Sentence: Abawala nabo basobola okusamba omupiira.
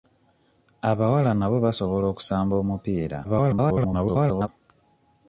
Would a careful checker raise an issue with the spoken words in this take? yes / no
yes